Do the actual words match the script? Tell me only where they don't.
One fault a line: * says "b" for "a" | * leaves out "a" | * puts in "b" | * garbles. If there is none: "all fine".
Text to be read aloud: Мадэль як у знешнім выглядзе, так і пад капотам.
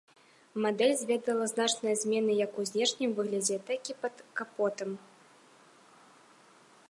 * puts in "зведала значныя змены"